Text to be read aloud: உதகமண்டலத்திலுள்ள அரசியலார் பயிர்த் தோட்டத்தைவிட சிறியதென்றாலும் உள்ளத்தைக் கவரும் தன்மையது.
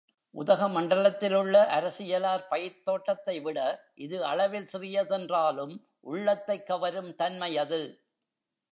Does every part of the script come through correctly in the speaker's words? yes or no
no